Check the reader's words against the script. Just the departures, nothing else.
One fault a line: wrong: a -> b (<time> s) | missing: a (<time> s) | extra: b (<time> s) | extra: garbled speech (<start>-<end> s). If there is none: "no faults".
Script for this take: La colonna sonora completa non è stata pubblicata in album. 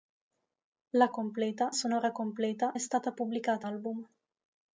wrong: colonna -> completa (1.1 s)
missing: non (2.7 s)
missing: in (3.7 s)